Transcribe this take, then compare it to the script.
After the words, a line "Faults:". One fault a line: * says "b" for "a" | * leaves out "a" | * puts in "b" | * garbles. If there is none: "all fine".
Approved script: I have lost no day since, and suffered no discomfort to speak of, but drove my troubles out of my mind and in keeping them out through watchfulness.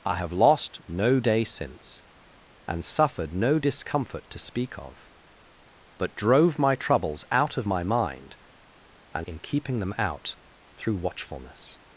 I have lost no day since, and suffered no discomfort to speak of, but drove my troubles out of my mind and in keeping them out through watchfulness.
Faults:
all fine